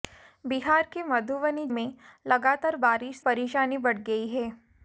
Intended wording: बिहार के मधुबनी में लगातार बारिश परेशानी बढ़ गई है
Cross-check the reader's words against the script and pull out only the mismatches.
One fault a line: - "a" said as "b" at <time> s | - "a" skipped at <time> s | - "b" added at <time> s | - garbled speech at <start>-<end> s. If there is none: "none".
none